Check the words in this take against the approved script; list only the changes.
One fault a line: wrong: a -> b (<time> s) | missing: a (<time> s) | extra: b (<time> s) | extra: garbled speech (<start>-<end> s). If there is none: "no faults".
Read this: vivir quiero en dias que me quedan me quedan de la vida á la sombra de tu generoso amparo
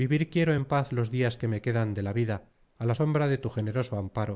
extra: paz los (0.6 s)
missing: me quedan (1.9 s)